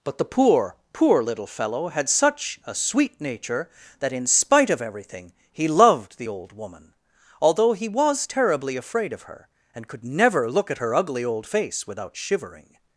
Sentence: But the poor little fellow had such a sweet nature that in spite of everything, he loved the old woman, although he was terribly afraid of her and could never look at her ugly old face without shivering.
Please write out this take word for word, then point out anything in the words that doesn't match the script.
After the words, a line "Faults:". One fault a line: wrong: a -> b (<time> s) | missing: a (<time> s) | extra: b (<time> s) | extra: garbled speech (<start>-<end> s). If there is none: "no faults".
But the poor poor little fellow had such a sweet nature that in spite of everything, he loved the old woman, although he was terribly afraid of her and could never look at her ugly old face without shivering.
Faults:
extra: poor (0.9 s)